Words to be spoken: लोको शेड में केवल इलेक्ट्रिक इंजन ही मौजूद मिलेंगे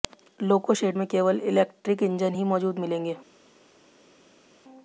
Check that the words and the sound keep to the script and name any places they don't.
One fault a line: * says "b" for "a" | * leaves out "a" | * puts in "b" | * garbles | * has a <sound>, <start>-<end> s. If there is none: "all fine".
all fine